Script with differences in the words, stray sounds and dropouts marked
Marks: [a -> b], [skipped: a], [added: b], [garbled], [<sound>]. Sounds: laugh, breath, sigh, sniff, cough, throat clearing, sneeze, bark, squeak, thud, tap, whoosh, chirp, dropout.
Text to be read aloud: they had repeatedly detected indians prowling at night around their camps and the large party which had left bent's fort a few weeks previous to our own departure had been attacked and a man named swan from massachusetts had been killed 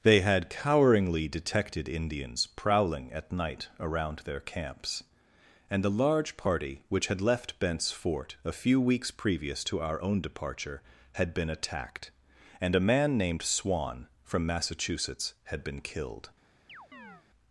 they had [repeatedly -> coweringly] detected indians prowling at night around their camps and the large party which had left bent's fort a few weeks previous to our own departure had been attacked and a man named swan from massachusetts had been killed [chirp]